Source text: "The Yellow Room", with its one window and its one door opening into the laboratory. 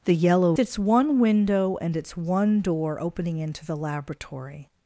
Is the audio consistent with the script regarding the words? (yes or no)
no